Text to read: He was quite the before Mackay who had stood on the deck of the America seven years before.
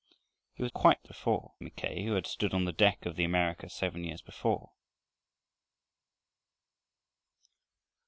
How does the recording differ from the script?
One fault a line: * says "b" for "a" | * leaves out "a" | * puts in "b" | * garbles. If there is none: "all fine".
all fine